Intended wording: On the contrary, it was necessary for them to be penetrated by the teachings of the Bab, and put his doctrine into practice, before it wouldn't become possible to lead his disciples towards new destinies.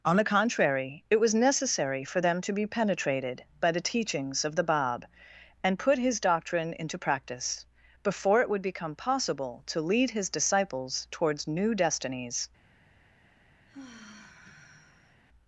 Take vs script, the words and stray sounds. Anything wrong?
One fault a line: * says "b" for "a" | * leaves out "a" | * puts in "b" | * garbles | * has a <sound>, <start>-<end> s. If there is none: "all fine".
* says "would" for "wouldn't"
* has a sigh, 13.7-15.2 s